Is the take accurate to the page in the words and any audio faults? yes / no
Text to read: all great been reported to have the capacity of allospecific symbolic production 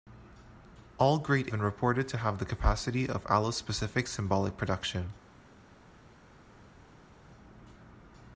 yes